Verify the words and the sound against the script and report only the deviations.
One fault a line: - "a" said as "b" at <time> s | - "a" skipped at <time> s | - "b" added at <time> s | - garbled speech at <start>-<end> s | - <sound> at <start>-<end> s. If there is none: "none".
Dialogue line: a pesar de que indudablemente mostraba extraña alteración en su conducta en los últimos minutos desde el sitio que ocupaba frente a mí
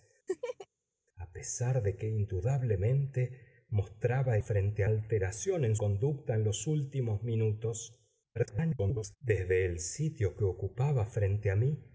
- laugh at 0.3-0.7 s
- "extraña" said as "frente" at 4.4 s
- "su" skipped at 5.8 s
- garbled speech at 8.3-9.2 s